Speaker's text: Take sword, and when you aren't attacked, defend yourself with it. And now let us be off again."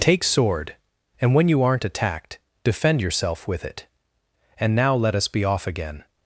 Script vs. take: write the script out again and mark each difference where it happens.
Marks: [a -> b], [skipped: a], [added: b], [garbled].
Take sword, and when you aren't attacked, defend yourself with it. And now let us be off again."